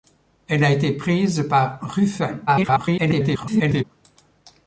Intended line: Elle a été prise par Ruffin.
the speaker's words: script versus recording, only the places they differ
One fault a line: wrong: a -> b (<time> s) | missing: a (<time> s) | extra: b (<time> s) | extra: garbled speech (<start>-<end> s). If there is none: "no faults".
extra: garbled speech (2.5-3.8 s)